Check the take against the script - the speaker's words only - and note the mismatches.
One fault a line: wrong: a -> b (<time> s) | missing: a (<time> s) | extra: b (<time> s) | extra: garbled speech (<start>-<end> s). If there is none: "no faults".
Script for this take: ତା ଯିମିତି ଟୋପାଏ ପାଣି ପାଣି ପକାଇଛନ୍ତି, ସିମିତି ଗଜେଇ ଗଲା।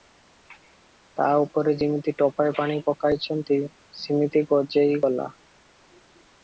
extra: ଉପରେ (1.4 s)
missing: ପାଣି (2.8 s)